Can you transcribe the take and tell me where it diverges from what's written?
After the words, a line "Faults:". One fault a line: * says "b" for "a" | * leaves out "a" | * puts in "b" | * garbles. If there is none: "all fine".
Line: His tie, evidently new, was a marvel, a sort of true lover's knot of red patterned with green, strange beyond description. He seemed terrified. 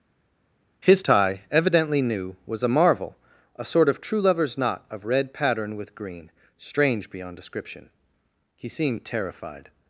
His tie, evidently new, was a marvel, a sort of true lover's knot of red pattern with green, strange beyond description. He seemed terrified.
Faults:
* says "pattern" for "patterned"